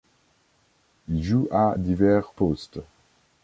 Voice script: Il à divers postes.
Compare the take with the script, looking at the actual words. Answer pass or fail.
fail